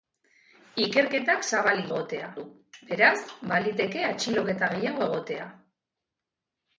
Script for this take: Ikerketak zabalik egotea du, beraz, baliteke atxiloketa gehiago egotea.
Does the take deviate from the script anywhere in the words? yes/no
no